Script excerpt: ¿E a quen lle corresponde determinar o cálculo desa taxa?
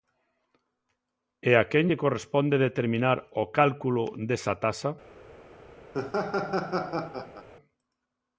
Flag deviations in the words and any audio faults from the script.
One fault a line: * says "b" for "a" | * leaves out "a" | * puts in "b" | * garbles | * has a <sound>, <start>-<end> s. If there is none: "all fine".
* has a laugh, 5.9-7.5 s